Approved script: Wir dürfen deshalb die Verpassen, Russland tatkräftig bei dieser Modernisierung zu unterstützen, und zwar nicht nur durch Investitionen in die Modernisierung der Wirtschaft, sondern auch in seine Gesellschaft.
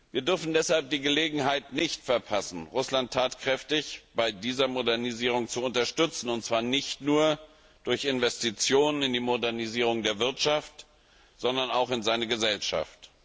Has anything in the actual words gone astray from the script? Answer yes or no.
yes